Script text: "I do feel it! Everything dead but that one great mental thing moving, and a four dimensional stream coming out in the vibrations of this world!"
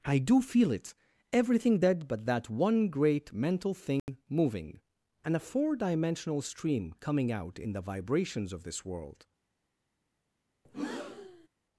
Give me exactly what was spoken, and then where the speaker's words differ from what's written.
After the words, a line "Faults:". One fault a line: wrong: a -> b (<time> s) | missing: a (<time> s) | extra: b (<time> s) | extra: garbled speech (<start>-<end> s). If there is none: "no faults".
"I do feel it! Everything dead but that one great mental thing moving, and a four dimensional stream coming out in the vibrations of this world!"
Faults:
no faults